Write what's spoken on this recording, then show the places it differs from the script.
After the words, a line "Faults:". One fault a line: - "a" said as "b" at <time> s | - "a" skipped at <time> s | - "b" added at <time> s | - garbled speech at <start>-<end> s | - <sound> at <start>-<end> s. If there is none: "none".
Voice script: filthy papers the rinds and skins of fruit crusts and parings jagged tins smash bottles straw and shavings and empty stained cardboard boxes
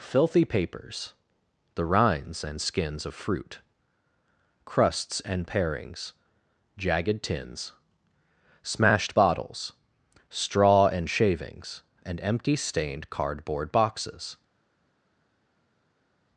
filthy papers the rinds and skins of fruit crusts and parings jagged tins smashed bottles straw and shavings and empty stained cardboard boxes
Faults:
- "smash" said as "smashed" at 8.6 s